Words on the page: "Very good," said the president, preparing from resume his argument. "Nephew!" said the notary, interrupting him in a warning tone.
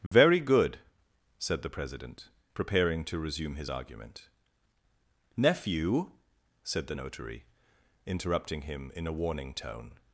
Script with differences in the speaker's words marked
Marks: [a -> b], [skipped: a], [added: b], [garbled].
"Very good," said the president, preparing [from -> to] resume his argument. "Nephew!" said the notary, interrupting him in a warning tone.